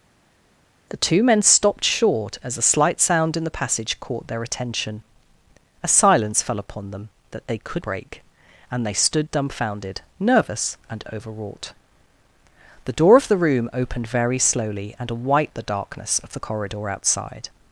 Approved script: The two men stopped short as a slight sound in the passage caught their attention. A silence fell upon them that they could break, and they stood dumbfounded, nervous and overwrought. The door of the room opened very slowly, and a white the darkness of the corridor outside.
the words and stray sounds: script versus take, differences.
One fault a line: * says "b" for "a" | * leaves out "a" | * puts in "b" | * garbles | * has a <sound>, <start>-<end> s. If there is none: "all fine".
all fine